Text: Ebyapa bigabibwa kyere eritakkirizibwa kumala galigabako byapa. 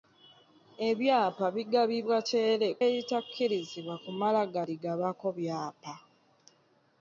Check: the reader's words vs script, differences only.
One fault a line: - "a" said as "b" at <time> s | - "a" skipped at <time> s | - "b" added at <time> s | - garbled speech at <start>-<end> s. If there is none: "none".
none